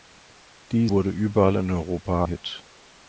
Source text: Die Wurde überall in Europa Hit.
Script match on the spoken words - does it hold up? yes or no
yes